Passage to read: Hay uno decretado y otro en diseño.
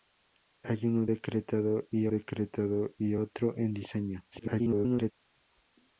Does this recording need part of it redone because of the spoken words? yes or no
yes